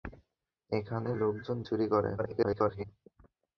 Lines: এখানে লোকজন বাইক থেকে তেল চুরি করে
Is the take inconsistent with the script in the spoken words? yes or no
yes